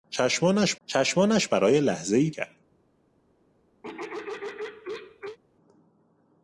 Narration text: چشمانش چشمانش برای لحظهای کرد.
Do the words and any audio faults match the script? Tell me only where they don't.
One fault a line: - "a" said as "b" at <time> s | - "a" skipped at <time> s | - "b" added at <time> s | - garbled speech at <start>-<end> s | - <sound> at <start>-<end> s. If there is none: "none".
- throat clearing at 3.8-5.4 s